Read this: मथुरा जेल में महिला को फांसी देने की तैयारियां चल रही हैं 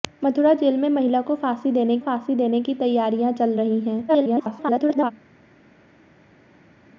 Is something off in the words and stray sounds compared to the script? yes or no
yes